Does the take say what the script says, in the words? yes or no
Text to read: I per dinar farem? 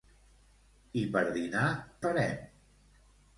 yes